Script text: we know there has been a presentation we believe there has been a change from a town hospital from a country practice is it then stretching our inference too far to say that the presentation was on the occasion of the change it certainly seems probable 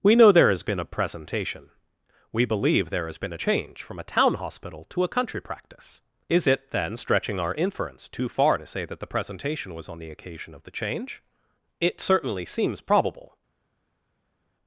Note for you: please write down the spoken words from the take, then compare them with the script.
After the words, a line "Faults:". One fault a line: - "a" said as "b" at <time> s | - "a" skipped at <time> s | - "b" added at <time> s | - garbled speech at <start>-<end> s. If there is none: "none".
we know there has been a presentation we believe there has been a change from a town hospital to a country practice is it then stretching our inference too far to say that the presentation was on the occasion of the change it certainly seems probable
Faults:
- "from" said as "to" at 4.9 s